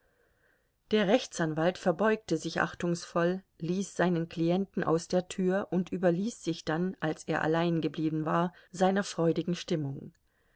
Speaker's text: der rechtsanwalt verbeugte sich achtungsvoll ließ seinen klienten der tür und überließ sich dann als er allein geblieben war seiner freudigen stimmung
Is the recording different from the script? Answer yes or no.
yes